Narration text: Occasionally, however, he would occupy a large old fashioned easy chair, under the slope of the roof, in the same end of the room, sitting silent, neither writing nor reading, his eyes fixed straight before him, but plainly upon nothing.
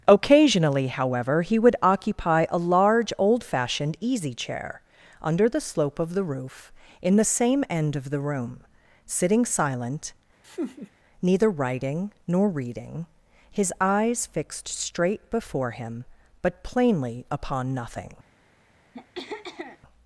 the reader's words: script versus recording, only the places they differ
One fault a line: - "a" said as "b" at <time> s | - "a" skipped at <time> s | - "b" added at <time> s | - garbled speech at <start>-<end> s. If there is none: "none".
none